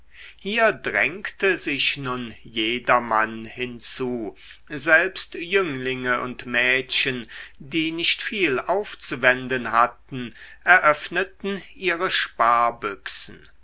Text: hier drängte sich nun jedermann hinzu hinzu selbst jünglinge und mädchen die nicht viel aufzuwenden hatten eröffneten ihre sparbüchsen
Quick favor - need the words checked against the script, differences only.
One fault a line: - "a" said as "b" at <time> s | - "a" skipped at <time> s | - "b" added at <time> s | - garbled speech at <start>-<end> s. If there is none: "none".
- "hinzu" skipped at 4.3 s